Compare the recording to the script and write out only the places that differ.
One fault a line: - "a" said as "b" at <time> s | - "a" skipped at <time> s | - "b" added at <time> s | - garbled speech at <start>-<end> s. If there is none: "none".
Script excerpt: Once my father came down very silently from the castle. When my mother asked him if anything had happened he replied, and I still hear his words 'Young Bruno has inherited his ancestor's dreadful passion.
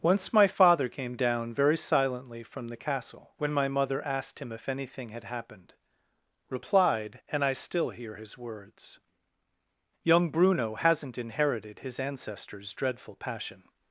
- "he" skipped at 5.8 s
- "has" said as "hasn't" at 10.8 s